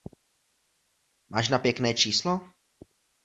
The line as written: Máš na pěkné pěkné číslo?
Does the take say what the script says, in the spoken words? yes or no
no